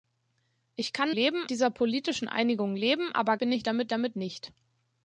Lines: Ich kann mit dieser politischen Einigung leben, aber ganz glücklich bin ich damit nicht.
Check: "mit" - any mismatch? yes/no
yes